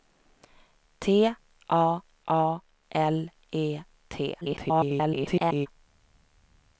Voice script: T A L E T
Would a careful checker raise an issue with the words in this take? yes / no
yes